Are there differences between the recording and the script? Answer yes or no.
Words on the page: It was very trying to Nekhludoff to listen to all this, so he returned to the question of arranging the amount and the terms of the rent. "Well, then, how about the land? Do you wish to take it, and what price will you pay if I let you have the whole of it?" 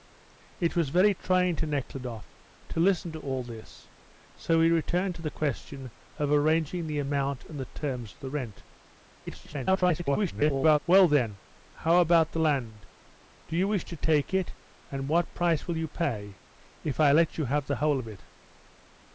yes